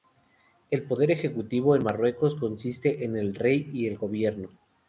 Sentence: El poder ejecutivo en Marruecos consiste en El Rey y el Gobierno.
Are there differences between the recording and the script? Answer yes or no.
no